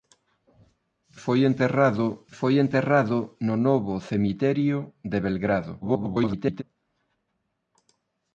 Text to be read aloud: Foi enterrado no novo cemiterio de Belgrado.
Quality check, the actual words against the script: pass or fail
fail